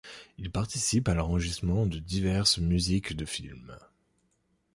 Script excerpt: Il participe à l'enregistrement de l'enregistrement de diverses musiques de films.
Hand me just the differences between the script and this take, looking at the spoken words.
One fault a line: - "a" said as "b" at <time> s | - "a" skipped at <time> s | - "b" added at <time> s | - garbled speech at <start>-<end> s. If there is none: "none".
- "l'enregistrement de" skipped at 2.0 s